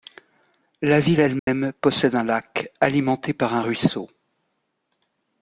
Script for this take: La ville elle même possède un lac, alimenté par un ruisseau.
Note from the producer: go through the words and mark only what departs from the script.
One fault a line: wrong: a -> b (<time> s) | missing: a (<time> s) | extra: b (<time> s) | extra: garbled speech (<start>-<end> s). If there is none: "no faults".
no faults